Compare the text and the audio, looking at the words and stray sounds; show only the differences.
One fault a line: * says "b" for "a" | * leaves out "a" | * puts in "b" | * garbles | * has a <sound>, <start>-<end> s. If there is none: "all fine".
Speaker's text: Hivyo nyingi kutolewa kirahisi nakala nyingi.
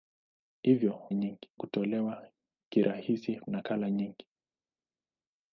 all fine